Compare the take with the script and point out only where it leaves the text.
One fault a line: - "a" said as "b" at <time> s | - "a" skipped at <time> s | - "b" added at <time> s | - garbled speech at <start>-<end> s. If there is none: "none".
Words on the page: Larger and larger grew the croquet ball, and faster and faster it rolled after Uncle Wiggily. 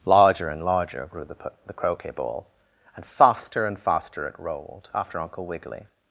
- "the" added at 1.7 s